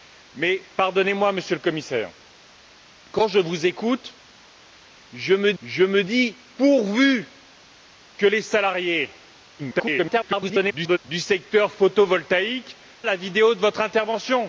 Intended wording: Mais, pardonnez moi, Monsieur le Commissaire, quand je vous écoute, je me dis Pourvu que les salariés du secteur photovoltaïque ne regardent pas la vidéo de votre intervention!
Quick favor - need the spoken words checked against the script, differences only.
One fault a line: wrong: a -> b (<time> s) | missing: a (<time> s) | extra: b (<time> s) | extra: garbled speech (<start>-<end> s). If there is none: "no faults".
extra: je me (5.6 s)
extra: garbled speech (9.6-11.0 s)
missing: ne regardent pas (12.8 s)